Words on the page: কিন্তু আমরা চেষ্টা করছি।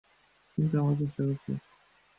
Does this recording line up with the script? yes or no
yes